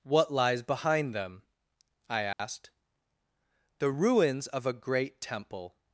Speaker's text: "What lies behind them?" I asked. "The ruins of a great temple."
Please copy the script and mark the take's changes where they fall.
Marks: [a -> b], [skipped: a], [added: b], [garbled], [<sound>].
"What lies behind them?" I asked. [dropout] "The ruins of a great temple."